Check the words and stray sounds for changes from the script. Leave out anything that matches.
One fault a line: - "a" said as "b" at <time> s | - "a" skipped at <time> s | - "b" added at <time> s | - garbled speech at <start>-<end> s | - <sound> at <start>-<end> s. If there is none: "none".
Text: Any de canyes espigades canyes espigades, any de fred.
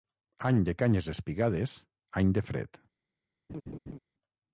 - "canyes espigades" skipped at 1.8 s
- laugh at 3.5-4.0 s